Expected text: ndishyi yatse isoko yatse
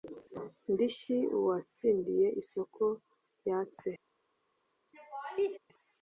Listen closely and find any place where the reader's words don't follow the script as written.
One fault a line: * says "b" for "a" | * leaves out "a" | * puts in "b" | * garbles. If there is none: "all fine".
* says "uwatsindiye" for "yatse"